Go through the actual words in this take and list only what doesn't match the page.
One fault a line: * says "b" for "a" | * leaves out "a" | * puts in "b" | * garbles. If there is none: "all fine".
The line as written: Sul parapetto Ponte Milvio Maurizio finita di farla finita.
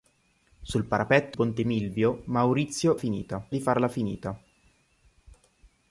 all fine